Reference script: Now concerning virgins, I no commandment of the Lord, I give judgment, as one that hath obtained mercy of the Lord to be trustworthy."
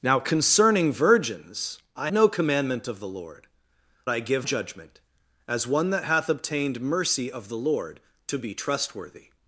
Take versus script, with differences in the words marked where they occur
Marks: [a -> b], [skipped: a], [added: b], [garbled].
Now concerning virgins, I no commandment of the Lord, I give judgment, as one that hath obtained mercy of the Lord to be trustworthy."